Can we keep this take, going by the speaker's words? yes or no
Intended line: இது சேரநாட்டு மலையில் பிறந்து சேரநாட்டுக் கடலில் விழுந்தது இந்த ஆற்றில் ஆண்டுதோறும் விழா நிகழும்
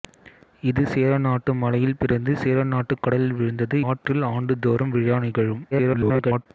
no